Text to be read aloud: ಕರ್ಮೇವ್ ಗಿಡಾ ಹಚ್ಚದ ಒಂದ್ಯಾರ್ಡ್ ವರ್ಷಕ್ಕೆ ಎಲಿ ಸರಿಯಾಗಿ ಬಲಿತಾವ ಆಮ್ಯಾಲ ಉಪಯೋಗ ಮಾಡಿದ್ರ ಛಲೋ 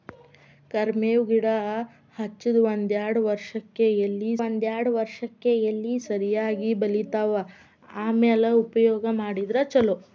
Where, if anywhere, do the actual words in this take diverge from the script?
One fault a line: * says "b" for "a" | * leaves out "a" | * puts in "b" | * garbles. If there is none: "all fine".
* puts in "ಒಂದ್ಯಾರ್ಡ್ ವರ್ಷಕ್ಕೆ ಎಲಿ"